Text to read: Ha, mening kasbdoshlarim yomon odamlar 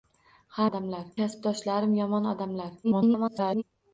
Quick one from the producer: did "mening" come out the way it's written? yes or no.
no